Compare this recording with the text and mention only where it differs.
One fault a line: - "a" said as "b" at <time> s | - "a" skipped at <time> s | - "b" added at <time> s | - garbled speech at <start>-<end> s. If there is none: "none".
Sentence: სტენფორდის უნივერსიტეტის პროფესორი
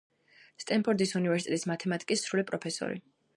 - "მათემატიკის სრული" added at 1.7 s